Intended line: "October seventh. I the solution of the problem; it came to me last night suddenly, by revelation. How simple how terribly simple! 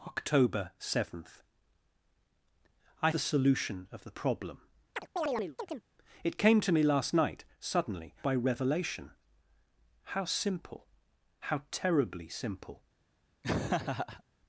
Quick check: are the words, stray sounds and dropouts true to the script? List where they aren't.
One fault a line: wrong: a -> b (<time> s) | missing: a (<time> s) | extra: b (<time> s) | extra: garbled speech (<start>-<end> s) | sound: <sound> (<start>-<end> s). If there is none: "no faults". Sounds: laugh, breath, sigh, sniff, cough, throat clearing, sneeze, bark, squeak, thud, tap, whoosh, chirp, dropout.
sound: chirp (5.0-5.9 s)
sound: laugh (13.4-14.2 s)